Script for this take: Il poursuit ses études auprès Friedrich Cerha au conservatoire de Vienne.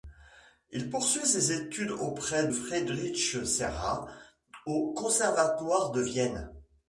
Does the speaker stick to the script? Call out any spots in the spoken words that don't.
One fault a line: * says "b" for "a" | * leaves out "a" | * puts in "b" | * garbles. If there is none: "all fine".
all fine